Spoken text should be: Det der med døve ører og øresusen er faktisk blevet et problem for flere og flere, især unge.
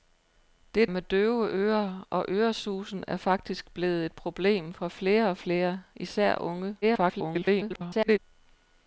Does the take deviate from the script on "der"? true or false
true